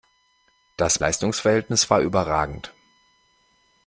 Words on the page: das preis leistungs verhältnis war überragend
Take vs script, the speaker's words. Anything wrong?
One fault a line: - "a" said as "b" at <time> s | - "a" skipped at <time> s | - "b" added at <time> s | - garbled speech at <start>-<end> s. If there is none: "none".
- "preis" skipped at 1.0 s